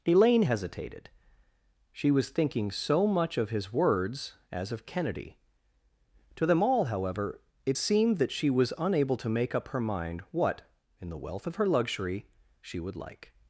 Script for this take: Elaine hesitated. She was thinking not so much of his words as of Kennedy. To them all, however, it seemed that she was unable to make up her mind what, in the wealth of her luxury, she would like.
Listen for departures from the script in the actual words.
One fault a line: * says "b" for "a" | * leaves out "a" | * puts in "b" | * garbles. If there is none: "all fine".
* leaves out "not"